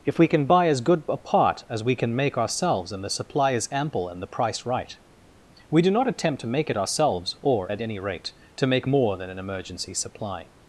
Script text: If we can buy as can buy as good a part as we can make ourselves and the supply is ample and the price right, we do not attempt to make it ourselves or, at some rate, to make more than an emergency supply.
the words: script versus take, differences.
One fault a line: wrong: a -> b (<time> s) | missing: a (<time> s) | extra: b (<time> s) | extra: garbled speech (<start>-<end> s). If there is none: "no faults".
missing: can buy as (0.8 s)
wrong: some -> any (7.8 s)